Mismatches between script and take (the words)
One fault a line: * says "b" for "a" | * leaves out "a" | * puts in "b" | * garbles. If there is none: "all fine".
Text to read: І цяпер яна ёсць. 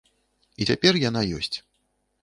all fine